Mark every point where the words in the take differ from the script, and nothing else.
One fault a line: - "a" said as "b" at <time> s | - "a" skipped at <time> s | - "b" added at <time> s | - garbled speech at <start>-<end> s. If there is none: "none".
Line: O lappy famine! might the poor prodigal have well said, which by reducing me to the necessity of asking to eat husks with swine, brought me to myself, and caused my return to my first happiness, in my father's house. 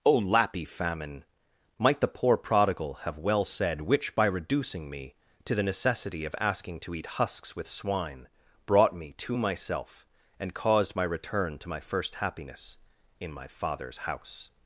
none